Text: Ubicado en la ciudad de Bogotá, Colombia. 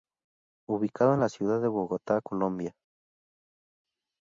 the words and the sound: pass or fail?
pass